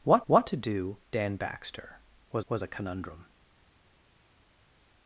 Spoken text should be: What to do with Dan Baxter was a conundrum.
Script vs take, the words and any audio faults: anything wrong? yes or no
yes